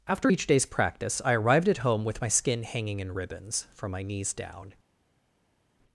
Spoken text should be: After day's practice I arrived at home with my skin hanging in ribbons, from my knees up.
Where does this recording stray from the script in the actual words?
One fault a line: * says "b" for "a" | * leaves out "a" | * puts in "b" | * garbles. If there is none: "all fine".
* puts in "each"
* says "down" for "up"